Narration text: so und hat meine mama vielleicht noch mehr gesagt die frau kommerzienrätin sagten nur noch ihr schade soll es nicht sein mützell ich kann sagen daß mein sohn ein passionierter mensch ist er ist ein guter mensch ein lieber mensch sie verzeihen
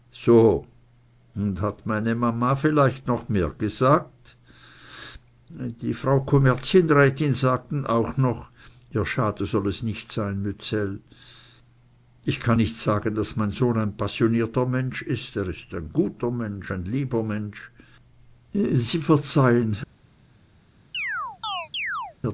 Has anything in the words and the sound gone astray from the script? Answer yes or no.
yes